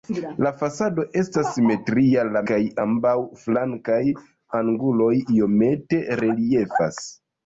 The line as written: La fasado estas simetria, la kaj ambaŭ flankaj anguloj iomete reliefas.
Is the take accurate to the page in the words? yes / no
yes